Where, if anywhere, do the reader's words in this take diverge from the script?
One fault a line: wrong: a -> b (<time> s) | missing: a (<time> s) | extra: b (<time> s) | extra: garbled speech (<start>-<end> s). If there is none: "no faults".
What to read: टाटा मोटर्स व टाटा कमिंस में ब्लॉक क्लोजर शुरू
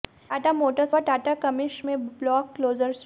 no faults